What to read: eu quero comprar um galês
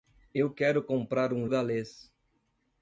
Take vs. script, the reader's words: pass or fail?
pass